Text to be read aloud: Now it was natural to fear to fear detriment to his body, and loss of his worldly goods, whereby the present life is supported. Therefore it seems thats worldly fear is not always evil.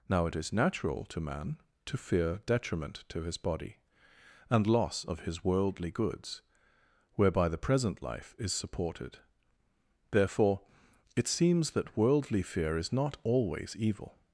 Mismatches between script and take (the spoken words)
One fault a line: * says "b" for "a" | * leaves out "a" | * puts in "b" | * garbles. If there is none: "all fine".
* says "is" for "was"
* says "man" for "fear"
* says "that" for "thats"